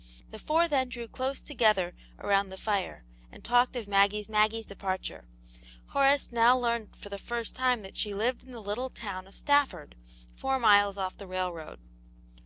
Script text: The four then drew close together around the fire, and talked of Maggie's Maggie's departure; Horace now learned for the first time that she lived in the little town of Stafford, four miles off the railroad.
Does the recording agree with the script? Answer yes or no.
yes